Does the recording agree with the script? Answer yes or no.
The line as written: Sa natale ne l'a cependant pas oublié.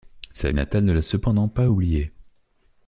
yes